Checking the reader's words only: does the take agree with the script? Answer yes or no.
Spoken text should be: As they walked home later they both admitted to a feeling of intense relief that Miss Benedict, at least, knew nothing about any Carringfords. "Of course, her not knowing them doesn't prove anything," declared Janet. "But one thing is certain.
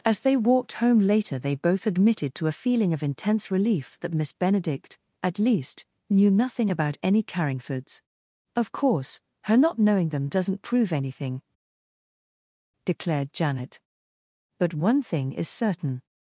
yes